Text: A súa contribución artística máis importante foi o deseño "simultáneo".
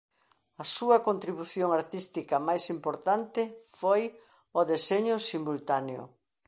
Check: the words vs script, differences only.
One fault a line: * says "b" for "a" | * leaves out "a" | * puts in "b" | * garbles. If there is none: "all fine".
all fine